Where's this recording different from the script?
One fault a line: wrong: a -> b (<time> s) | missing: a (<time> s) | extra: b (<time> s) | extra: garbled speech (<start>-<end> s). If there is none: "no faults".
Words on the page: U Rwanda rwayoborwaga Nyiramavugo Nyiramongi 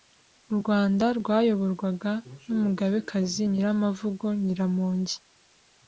extra: n'umugabekazi (2.4 s)